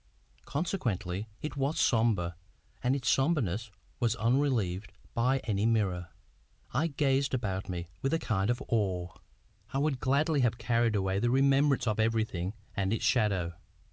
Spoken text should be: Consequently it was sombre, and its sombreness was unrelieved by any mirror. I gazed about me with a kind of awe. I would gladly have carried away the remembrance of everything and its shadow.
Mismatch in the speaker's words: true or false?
false